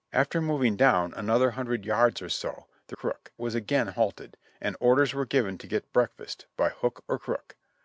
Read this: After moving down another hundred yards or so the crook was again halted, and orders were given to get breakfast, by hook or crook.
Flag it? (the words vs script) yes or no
no